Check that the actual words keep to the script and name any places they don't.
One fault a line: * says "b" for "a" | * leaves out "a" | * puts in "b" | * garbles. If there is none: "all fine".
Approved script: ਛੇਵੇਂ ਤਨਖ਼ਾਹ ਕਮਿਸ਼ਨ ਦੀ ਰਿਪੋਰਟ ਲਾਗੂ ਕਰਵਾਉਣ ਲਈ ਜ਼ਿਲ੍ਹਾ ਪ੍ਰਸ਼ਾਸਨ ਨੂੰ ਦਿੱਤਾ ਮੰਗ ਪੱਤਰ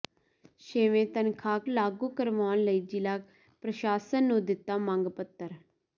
* leaves out "ਕਮਿਸ਼ਨ ਦੀ ਰਿਪੋਰਟ"